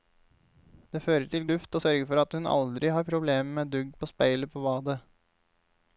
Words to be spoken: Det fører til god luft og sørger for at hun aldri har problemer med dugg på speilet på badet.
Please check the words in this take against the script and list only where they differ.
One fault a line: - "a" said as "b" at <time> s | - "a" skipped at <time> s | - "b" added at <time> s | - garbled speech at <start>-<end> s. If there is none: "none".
- "god" skipped at 1.4 s